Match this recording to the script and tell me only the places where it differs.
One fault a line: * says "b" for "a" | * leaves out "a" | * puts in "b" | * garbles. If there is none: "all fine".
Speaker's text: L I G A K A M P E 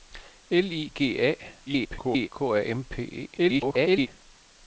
* garbles
* garbles